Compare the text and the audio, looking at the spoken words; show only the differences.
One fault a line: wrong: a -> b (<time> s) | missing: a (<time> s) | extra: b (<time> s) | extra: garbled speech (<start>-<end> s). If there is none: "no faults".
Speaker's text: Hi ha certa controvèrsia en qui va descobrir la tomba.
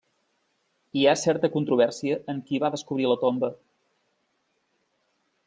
no faults